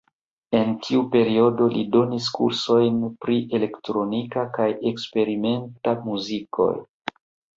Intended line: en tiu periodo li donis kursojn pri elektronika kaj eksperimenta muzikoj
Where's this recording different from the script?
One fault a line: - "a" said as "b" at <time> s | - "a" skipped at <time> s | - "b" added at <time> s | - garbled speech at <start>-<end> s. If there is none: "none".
none